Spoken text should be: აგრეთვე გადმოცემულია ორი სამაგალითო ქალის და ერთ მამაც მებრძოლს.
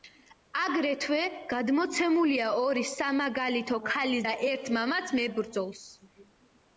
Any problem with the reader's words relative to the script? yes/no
no